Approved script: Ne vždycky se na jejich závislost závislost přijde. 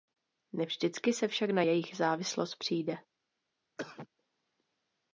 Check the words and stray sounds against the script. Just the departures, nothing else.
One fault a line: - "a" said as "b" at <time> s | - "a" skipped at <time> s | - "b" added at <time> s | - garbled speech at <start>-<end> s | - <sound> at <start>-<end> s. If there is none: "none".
- "však" added at 1.3 s
- "závislost" skipped at 2.6 s
- cough at 3.8-4.1 s